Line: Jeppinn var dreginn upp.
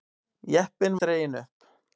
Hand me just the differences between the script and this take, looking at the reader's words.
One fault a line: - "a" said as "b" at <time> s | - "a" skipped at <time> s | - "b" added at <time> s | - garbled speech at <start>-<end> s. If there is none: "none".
- "var" skipped at 1.0 s